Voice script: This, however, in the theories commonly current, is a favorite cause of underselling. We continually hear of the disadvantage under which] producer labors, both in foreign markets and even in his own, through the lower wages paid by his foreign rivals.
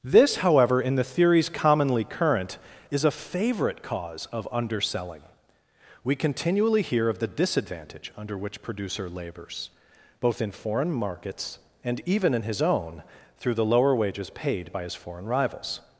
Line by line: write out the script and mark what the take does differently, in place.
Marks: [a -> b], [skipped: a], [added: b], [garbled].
This, however, in the theories commonly current, is a favorite cause of underselling. We continually hear of the disadvantage under which] producer labors, both in foreign markets and even in his own, through the lower wages paid by his foreign rivals.